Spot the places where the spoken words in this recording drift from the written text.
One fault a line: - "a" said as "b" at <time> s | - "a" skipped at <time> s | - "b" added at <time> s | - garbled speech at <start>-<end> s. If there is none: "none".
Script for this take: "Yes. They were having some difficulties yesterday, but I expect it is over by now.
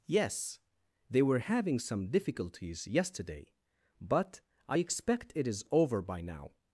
none